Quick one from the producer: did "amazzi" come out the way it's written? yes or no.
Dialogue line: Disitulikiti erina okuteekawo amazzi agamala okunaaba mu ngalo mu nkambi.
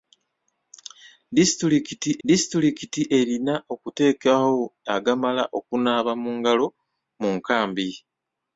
no